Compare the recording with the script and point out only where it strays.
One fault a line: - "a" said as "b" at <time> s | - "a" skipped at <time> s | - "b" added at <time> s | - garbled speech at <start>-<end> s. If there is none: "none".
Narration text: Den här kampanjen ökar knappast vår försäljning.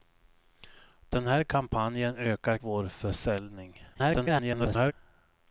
- "knappast" skipped at 2.6 s
- garbled speech at 3.9-4.9 s